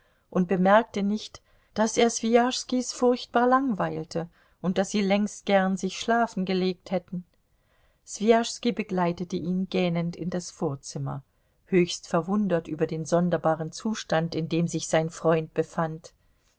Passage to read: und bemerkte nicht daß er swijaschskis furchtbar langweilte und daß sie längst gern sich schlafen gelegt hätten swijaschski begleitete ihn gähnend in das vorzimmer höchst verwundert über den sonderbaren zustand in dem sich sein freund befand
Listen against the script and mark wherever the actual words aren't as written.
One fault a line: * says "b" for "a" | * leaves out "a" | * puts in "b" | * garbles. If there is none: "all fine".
all fine